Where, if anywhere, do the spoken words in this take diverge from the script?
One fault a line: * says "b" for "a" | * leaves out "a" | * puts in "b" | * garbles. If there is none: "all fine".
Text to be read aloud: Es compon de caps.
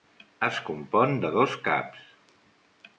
* puts in "dos"